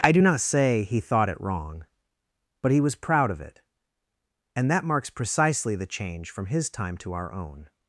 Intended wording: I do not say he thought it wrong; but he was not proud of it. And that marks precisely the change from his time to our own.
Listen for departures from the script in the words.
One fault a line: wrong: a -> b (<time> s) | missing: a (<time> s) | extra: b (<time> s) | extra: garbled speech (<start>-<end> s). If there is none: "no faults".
missing: not (3.0 s)